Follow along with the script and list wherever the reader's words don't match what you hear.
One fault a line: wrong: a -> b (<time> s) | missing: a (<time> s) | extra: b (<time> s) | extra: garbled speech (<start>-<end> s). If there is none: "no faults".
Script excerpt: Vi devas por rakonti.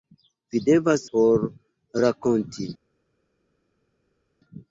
no faults